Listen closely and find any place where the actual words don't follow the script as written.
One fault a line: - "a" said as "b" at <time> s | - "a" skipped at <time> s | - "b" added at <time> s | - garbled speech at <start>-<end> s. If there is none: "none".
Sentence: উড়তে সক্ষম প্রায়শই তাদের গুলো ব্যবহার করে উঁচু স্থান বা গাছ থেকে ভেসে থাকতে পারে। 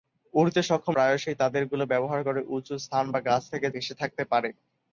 none